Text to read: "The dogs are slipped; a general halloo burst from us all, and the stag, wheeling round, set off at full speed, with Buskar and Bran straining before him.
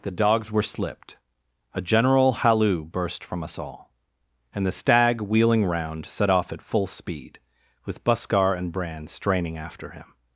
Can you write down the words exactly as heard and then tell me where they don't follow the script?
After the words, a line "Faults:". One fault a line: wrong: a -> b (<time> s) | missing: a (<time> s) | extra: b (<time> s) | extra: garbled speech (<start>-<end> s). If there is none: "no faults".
"The dogs were slipped; a general halloo burst from us all, and the stag, wheeling round, set off at full speed, with Buskar and Bran straining after him.
Faults:
wrong: are -> were (0.5 s)
wrong: before -> after (9.6 s)